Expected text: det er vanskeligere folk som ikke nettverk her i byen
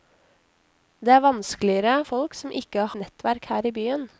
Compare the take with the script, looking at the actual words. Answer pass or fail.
pass